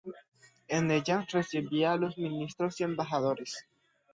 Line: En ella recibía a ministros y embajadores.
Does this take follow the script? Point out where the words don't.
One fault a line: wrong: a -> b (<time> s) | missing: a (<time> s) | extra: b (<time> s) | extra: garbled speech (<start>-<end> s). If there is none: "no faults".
extra: los (2.0 s)